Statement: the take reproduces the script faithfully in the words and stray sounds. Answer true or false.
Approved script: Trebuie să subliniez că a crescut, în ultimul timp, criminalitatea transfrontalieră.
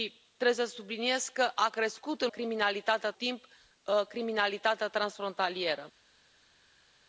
false